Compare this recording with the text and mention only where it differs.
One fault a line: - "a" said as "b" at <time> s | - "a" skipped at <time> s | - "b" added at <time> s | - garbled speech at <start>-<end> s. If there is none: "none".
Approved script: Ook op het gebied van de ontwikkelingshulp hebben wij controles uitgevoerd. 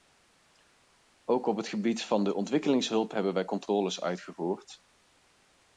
none